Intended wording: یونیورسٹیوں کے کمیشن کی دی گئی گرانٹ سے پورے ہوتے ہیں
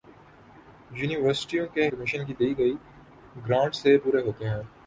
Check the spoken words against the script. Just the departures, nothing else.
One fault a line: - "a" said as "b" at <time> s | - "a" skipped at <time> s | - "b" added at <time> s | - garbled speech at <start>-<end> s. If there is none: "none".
none